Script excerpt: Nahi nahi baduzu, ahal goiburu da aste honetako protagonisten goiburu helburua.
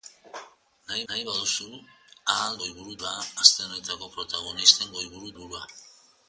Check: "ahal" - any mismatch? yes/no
no